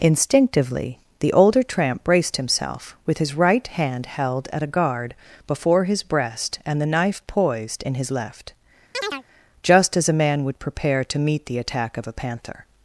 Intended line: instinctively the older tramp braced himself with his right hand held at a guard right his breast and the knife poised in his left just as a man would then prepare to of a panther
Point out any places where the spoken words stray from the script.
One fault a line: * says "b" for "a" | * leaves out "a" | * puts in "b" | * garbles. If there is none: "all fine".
* says "before" for "right"
* leaves out "then"
* puts in "meet the attack"